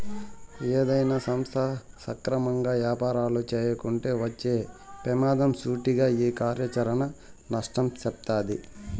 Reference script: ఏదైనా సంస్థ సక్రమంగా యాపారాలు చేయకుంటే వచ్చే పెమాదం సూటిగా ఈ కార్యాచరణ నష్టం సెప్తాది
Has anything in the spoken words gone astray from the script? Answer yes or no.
no